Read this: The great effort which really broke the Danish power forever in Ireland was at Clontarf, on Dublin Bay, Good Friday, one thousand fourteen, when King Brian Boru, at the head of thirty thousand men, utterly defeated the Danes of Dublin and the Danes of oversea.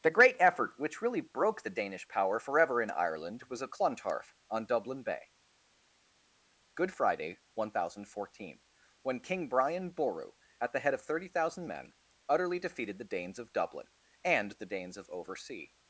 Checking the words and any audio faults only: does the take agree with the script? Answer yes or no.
yes